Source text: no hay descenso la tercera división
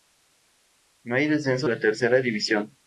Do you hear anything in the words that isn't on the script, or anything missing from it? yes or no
no